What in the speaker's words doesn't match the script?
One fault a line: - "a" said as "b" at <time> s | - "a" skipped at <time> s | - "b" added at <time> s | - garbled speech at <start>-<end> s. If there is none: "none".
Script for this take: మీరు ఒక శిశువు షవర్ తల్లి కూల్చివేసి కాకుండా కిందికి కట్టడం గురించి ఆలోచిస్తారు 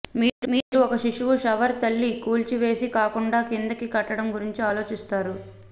- "మీరు" added at 0.5 s